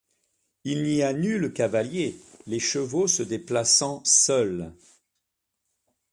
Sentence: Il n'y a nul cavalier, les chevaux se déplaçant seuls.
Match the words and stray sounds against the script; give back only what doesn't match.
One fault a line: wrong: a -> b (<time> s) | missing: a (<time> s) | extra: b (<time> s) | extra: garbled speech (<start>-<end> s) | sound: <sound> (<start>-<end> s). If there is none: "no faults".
no faults